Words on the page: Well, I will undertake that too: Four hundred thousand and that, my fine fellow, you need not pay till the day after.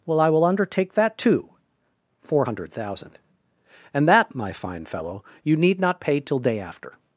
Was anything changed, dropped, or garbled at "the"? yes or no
yes